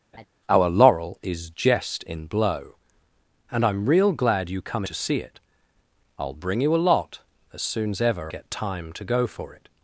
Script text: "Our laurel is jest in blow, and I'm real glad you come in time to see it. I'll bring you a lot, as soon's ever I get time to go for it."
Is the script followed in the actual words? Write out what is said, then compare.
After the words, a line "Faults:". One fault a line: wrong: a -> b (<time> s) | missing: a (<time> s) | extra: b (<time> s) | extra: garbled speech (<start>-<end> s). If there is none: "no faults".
"Our laurel is jest in blow, and I'm real glad you come to see it. I'll bring you a lot, as soon's ever get time to go for it."
Faults:
missing: in time (4.8 s)
missing: I (8.3 s)